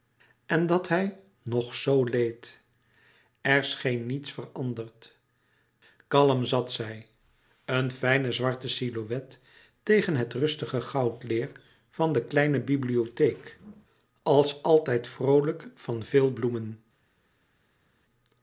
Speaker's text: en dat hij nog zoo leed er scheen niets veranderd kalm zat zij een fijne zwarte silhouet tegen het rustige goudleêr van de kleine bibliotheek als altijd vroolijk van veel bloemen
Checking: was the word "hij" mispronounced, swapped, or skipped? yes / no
no